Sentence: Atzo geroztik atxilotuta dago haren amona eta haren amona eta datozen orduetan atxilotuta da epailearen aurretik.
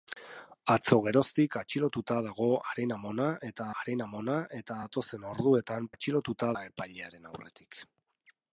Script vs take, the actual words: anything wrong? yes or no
no